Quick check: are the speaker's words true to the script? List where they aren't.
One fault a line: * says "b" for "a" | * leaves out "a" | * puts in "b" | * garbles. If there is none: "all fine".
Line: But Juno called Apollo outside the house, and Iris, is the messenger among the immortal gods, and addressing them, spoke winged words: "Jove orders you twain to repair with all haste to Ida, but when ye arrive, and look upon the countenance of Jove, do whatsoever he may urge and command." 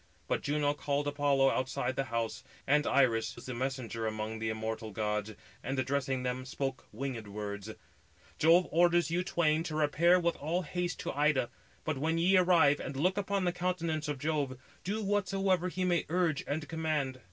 all fine